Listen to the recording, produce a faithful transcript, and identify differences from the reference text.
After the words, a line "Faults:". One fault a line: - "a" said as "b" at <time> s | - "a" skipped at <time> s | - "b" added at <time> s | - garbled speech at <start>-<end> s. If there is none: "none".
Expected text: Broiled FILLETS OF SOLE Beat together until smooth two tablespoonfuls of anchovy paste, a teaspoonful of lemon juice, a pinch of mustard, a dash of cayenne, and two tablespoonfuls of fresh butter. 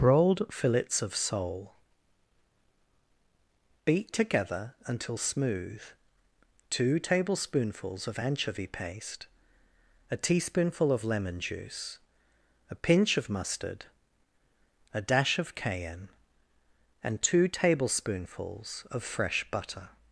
Broiled FILLETS OF SOLE Beat together until smooth two tablespoonfuls of anchovy paste, a teaspoonful of lemon juice, a pinch of mustard, a dash of cayenne, and two tablespoonfuls of fresh butter.
Faults:
none